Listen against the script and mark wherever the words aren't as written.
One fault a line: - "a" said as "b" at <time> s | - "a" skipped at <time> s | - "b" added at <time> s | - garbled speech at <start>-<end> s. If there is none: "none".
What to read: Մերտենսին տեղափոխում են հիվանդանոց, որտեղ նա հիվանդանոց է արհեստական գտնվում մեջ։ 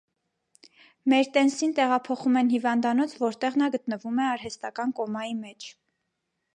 - "հիվանդանոց" said as "գտնվում" at 3.8 s
- "գտնվում" said as "կոմայի" at 5.0 s